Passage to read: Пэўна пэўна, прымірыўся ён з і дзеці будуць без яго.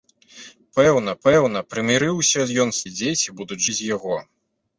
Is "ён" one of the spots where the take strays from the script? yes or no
no